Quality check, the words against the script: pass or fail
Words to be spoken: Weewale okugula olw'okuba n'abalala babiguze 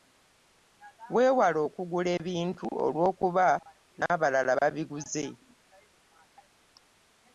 fail